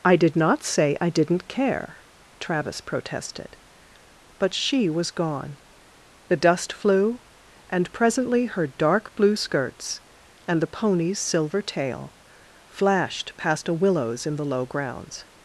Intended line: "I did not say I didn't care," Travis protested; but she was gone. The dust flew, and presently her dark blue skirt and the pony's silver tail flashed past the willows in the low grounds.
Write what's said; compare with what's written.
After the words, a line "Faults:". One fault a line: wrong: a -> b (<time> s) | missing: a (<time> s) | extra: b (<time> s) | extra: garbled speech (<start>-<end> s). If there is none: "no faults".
"I did not say I didn't care," Travis protested; but she was gone. The dust flew, and presently her dark blue skirts and the pony's silver tail flashed past a willows in the low grounds.
Faults:
wrong: skirt -> skirts (9.3 s)
wrong: the -> a (13.7 s)